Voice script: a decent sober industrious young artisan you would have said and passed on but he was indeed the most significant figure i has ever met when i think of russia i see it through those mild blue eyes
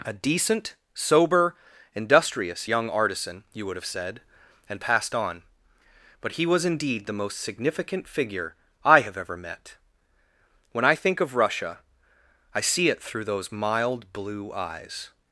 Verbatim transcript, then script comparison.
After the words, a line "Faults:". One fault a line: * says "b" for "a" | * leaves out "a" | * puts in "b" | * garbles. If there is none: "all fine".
a decent sober industrious young artisan you would have said and passed on but he was indeed the most significant figure i have ever met when i think of russia i see it through those mild blue eyes
Faults:
* says "have" for "has"